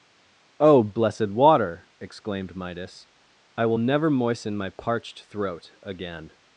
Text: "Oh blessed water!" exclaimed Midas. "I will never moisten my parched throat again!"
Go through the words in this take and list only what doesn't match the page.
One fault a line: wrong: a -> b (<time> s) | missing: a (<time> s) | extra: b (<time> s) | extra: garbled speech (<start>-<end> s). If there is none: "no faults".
no faults